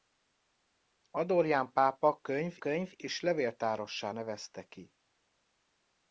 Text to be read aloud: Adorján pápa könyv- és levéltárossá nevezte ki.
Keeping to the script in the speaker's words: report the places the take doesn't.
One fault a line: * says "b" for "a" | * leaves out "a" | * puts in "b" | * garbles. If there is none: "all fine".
* puts in "könyv"